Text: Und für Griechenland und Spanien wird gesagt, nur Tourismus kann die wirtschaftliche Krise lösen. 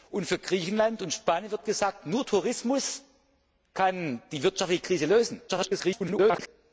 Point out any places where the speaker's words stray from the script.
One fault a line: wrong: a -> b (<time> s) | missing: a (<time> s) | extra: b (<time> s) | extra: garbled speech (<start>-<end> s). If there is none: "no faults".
extra: garbled speech (5.5-6.5 s)